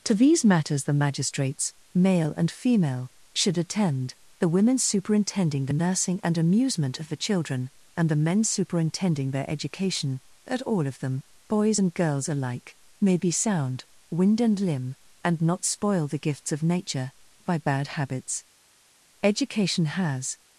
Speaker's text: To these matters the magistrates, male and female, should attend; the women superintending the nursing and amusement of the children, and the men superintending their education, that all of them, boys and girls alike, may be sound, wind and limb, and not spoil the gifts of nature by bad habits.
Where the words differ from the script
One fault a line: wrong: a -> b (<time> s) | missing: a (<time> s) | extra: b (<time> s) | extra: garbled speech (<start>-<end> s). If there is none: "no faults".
extra: Education has (19.2 s)